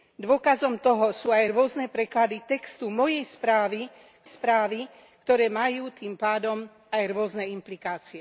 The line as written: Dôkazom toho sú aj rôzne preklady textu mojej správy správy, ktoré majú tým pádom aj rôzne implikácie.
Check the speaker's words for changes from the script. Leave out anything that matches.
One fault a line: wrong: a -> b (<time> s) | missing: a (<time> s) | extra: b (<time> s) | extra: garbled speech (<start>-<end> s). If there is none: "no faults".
no faults